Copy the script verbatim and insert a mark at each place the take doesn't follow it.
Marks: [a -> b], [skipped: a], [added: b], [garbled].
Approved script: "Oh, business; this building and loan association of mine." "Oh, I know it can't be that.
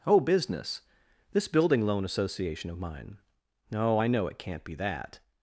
"Oh, business; this building [skipped: and] loan association of mine." "Oh, I know it can't be that.